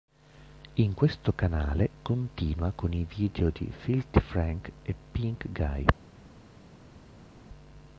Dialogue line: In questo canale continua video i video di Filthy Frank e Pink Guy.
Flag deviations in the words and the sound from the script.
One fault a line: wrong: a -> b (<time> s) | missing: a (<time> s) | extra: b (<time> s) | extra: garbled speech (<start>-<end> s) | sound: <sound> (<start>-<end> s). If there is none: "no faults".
wrong: video -> con (2.7 s)